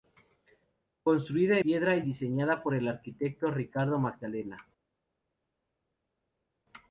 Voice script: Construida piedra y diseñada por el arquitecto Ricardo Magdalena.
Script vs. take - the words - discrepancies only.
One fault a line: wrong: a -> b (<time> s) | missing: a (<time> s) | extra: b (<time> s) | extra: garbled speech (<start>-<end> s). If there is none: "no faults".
no faults